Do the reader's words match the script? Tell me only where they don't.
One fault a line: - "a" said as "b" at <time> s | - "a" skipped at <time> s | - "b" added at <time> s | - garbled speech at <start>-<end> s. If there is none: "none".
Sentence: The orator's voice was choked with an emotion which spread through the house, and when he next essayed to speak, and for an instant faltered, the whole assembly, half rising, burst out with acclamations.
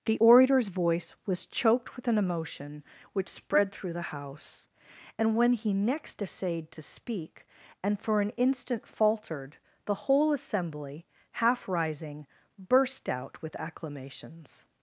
none